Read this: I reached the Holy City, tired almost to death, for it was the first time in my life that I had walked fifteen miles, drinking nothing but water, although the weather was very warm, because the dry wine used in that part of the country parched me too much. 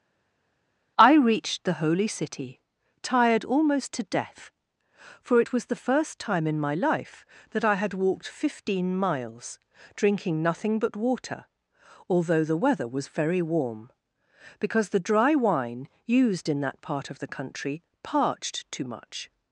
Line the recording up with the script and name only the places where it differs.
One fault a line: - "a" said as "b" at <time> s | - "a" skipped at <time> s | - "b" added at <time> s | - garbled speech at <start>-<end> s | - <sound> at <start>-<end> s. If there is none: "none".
- "me" skipped at 18.7 s